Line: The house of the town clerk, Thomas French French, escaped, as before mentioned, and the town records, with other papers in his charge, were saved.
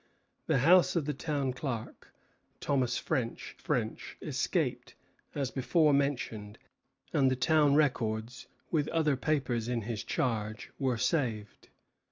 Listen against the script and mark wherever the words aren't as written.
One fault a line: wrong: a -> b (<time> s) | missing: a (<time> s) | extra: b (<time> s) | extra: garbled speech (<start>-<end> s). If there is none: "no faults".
no faults